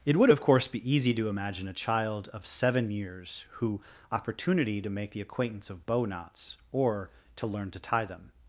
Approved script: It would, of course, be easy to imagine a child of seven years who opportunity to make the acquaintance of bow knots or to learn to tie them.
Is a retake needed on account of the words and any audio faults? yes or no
no